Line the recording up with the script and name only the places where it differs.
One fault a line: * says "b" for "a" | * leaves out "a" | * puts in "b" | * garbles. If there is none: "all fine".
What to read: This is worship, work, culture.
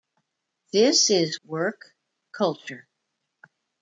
* leaves out "worship"